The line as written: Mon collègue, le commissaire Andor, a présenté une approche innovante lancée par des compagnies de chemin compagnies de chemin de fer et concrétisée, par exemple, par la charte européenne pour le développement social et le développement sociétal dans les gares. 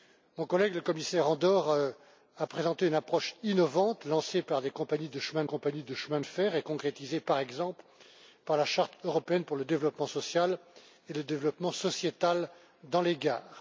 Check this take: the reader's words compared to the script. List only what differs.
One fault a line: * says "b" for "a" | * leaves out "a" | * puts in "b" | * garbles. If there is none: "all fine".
all fine